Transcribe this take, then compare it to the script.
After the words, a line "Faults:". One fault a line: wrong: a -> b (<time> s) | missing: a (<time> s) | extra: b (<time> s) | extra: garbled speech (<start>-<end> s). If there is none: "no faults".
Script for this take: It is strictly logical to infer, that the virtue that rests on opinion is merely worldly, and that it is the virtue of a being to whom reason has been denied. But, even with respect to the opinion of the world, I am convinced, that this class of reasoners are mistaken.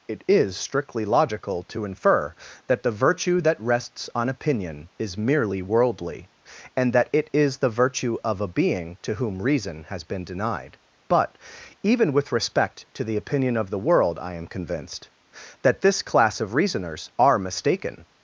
It is strictly logical to infer, that the virtue that rests on opinion is merely worldly, and that it is the virtue of a being to whom reason has been denied. But, even with respect to the opinion of the world, I am convinced, that this class of reasoners are mistaken.
Faults:
no faults